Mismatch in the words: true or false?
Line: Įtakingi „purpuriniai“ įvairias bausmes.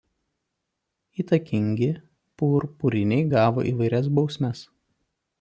true